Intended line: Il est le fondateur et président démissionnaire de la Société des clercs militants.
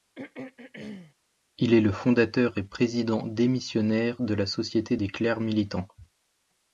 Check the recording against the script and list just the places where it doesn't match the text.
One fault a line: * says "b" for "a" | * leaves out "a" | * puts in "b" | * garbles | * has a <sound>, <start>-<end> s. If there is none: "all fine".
* has a throat clearing, 0.2-1.1 s